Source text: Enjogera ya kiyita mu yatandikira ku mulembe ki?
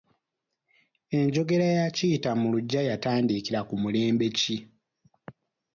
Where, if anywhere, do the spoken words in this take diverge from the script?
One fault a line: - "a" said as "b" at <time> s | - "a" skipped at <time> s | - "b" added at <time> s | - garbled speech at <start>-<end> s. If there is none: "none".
- "luggya" added at 2.5 s